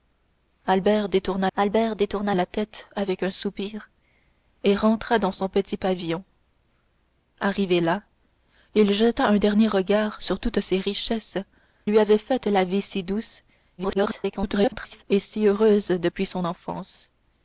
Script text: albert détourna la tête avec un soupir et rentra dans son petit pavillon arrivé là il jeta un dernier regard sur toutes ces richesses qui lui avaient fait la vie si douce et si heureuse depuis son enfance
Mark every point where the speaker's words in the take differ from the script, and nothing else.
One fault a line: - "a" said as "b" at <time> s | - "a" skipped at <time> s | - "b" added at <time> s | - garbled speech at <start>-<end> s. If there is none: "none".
- "albert détourna" added at 1.5 s
- "qui" skipped at 11.4 s
- garbled speech at 13.8-15.0 s